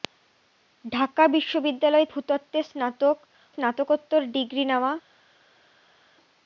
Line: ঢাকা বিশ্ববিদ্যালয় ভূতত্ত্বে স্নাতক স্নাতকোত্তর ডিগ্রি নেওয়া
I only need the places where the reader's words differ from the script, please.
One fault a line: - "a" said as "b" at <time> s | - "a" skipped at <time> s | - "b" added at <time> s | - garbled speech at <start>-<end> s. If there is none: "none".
none